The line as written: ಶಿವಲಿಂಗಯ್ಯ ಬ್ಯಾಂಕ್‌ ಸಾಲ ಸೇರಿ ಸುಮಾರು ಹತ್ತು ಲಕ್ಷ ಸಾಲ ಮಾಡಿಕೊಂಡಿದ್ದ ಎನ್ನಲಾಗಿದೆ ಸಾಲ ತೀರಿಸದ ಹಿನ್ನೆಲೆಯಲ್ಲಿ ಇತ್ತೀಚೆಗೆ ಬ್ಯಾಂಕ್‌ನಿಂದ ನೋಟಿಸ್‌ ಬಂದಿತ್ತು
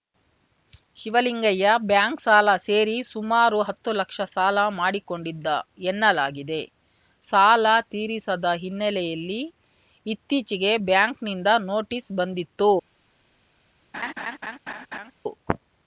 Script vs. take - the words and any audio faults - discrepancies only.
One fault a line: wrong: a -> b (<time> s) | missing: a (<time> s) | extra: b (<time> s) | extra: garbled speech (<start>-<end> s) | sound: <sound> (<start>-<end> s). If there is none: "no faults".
sound: laugh (13.9-15.1 s)